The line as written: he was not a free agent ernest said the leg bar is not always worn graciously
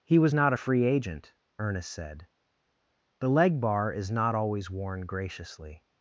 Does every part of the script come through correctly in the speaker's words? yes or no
yes